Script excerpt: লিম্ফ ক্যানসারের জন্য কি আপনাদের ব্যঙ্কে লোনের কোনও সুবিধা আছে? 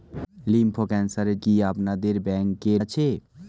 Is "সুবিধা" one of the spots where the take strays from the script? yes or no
yes